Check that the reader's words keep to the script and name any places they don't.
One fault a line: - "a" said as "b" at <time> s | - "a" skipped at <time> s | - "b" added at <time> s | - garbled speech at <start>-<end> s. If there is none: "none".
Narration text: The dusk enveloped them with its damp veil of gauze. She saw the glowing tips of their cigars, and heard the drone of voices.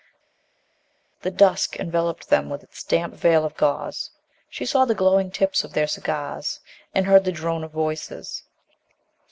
none